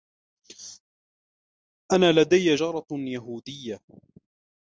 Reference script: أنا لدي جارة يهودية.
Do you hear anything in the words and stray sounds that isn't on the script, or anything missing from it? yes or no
no